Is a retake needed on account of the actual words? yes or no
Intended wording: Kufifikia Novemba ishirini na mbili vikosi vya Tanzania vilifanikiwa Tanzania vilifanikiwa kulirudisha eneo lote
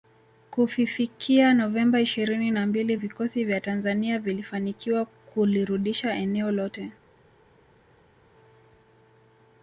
yes